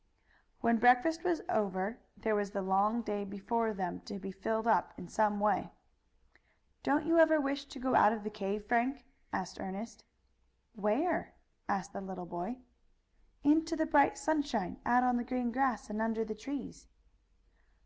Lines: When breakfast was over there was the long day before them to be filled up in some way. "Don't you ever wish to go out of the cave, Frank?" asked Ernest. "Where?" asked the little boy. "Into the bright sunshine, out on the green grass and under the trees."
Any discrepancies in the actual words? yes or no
no